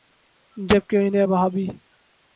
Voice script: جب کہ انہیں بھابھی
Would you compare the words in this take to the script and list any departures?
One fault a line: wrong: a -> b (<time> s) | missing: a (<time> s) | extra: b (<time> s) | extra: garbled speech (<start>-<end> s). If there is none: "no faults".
no faults